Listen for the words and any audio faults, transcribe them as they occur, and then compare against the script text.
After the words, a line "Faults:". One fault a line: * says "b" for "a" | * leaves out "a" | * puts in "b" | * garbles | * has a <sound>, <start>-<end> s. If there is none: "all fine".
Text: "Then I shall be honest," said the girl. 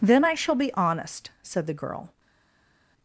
"Then I shall be honest," said the girl.
Faults:
all fine